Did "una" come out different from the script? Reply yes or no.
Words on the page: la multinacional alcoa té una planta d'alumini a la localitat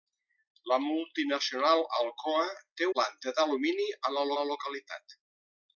yes